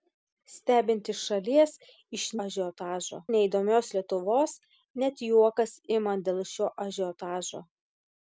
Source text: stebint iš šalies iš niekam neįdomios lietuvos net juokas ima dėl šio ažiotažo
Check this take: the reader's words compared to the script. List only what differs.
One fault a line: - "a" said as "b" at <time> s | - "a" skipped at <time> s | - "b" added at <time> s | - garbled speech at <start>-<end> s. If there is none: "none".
- "niekam" said as "ažiotažo" at 2.5 s